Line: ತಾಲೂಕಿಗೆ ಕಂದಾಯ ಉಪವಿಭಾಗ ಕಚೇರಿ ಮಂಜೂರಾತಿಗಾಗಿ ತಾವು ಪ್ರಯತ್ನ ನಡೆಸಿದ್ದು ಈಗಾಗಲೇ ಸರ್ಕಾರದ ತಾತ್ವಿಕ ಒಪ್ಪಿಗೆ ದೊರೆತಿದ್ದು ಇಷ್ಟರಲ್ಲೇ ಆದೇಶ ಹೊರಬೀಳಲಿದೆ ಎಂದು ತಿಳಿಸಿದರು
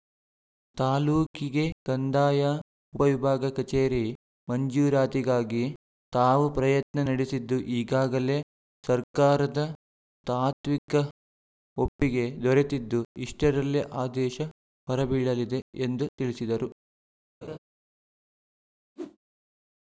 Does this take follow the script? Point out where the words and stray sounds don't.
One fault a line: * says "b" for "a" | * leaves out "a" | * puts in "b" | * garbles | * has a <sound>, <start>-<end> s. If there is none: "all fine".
* has a laugh, 17.4-17.6 s
* has a whoosh, 19.0-19.2 s